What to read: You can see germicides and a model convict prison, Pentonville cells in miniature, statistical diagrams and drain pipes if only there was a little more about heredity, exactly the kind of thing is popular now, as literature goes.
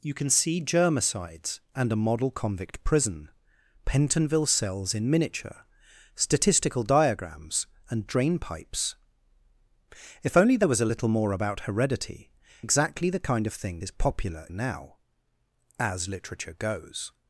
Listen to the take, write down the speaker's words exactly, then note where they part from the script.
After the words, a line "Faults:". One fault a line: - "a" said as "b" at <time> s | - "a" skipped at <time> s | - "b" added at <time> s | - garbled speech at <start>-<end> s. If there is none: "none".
You can see germicides and a model convict prison, Pentonville cells in miniature, statistical diagrams and drain pipes if only there was a little more about heredity, exactly the kind of thing is popular now, as literature goes.
Faults:
none